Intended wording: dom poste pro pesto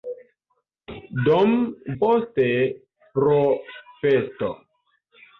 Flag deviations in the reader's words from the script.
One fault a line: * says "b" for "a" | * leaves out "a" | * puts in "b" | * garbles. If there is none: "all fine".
all fine